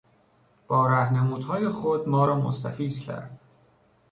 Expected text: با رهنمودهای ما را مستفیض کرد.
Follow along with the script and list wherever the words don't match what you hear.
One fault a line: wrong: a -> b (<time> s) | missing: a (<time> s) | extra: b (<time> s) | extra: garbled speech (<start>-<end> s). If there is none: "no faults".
extra: خود (1.7 s)